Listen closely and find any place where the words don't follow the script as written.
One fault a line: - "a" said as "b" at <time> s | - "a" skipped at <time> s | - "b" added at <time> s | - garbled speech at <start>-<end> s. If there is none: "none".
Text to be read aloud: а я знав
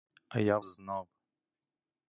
none